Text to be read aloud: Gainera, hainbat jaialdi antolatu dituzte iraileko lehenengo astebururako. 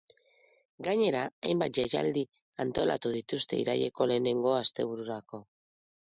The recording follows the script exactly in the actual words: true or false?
true